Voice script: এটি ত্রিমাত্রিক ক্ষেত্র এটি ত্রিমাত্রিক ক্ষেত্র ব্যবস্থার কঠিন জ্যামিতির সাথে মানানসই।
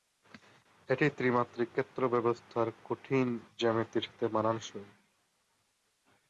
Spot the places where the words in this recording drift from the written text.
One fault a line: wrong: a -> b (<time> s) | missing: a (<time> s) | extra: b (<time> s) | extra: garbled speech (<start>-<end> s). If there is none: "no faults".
missing: এটি ত্রিমাত্রিক ক্ষেত্র (2.0 s)